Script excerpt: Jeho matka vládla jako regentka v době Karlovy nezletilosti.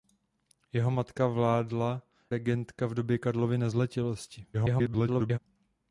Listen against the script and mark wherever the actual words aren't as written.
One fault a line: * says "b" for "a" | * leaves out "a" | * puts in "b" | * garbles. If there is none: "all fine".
* leaves out "jako"
* garbles